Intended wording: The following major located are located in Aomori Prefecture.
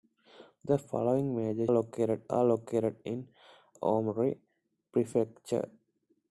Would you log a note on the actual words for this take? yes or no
no